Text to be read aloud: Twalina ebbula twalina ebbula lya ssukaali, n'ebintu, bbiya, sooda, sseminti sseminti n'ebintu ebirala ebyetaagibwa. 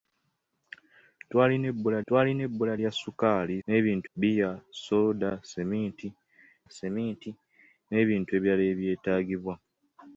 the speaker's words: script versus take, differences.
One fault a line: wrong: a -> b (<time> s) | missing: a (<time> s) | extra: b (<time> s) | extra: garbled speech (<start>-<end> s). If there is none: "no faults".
no faults